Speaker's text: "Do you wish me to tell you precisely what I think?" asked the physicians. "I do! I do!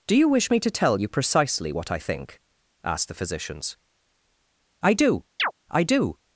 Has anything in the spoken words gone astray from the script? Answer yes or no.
no